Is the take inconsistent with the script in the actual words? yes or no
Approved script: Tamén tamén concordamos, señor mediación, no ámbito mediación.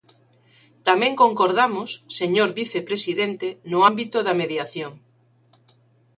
yes